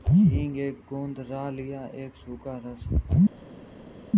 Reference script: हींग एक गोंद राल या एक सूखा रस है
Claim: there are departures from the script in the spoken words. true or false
false